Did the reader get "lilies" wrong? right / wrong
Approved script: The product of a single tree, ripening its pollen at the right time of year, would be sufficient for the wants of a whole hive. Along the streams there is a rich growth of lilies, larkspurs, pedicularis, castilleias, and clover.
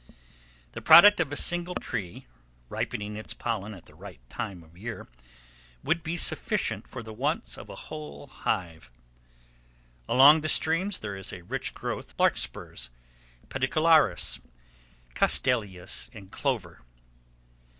wrong